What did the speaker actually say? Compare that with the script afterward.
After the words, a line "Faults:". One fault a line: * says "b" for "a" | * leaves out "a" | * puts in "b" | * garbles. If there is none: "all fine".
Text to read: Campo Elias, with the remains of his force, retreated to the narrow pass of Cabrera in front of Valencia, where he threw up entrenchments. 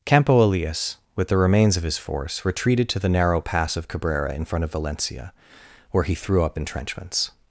Campo Elias, with the remains of his force, retreated to the narrow pass of Cabrera in front of Valencia, where he threw up entrenchments.
Faults:
all fine